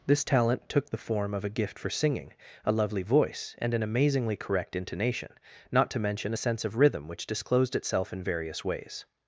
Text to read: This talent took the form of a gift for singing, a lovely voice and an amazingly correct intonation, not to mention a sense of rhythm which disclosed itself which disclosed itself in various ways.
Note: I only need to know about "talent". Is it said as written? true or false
true